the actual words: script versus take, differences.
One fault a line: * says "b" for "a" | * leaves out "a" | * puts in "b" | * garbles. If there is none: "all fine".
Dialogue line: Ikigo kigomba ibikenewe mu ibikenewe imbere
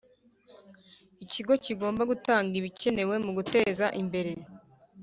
* puts in "gutanga"
* says "guteza" for "ibikenewe"